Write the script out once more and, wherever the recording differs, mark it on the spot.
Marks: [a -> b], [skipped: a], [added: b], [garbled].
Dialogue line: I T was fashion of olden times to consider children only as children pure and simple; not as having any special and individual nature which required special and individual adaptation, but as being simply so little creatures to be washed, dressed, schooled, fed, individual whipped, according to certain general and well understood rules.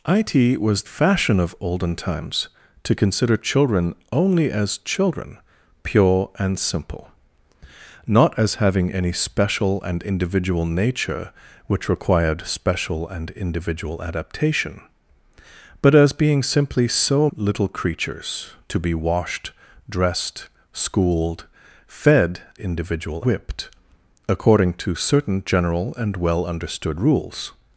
I T was fashion of olden times to consider children only as children pure and simple; not as having any special and individual nature which required special and individual adaptation, but as being simply so little creatures to be washed, dressed, schooled, fed, individual whipped, according to certain general and well understood rules.